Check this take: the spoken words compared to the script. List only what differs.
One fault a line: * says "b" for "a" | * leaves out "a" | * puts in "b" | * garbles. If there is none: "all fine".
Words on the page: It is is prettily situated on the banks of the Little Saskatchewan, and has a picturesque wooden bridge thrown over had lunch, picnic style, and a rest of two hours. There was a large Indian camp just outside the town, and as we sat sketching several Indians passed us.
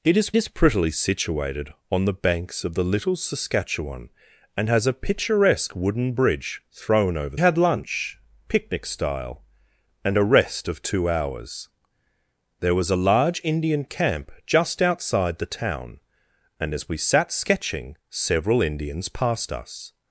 all fine